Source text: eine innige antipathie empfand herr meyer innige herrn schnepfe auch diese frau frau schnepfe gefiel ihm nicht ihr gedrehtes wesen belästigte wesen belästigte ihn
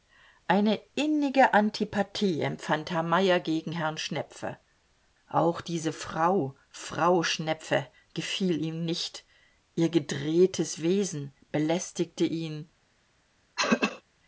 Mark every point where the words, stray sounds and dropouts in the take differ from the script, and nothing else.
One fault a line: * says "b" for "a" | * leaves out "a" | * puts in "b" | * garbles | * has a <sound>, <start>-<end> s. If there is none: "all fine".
* says "gegen" for "innige"
* leaves out "wesen belästigte"
* has a throat clearing, 13.6-14.0 s